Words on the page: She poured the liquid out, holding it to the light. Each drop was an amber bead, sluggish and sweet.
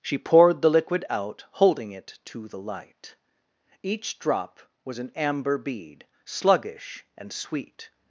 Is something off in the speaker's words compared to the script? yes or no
no